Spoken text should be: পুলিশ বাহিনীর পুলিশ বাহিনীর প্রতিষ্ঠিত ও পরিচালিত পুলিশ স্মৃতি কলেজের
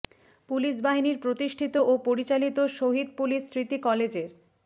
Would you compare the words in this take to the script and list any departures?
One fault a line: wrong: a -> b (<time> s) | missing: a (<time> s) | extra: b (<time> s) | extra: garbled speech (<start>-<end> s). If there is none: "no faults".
missing: পুলিশ বাহিনীর (1.2 s)
extra: শহীদ (2.8 s)